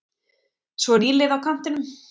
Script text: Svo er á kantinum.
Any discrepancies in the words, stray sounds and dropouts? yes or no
yes